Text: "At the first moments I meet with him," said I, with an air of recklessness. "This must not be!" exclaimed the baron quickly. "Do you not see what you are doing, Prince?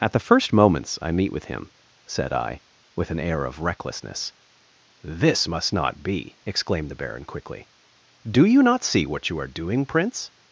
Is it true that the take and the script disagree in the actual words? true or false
false